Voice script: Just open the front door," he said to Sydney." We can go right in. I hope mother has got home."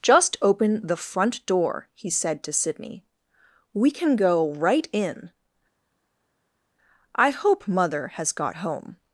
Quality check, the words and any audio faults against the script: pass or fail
pass